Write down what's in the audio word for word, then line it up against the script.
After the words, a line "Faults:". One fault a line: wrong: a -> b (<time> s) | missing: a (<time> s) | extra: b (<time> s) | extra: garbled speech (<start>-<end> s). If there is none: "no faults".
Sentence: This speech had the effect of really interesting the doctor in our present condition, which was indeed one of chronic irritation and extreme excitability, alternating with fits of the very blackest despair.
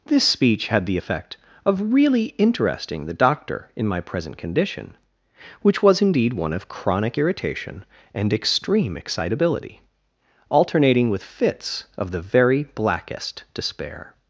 This speech had the effect of really interesting the doctor in my present condition, which was indeed one of chronic irritation and extreme excitability, alternating with fits of the very blackest despair.
Faults:
wrong: our -> my (3.9 s)